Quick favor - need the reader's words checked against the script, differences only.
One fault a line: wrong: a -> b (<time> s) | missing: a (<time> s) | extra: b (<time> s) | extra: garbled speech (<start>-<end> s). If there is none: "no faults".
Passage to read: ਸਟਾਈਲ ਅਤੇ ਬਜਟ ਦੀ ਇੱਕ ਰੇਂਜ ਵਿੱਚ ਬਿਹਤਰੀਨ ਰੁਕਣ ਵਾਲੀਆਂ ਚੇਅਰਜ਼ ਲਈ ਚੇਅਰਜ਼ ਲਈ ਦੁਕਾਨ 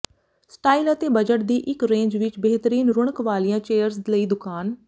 missing: ਚੇਅਰਜ਼ ਲਈ (4.3 s)